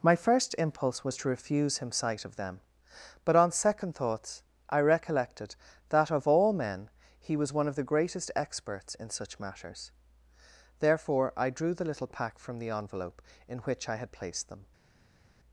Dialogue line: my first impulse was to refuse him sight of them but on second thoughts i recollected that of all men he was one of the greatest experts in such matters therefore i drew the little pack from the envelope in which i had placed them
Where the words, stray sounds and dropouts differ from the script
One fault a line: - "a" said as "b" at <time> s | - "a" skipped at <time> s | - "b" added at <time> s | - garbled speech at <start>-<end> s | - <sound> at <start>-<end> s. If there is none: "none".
none